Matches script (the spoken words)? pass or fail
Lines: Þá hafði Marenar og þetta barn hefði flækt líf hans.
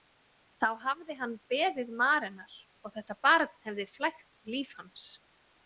fail